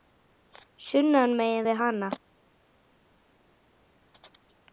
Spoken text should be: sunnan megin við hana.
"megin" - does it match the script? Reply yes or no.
yes